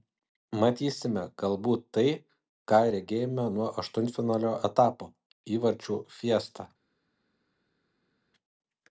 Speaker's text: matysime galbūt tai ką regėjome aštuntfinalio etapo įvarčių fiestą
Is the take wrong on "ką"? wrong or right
right